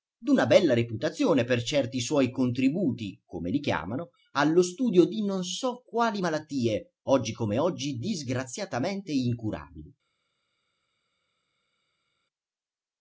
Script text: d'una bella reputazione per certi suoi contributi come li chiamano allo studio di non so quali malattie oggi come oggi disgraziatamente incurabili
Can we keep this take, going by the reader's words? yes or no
yes